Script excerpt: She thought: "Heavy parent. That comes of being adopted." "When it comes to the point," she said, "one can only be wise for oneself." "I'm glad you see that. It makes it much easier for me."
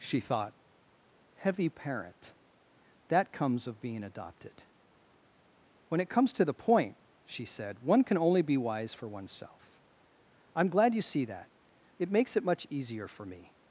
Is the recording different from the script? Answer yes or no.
no